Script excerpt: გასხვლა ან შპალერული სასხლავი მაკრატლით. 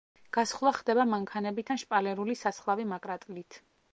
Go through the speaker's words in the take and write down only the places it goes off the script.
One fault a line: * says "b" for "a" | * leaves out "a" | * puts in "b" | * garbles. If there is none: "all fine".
* puts in "ხდება მანქანებით"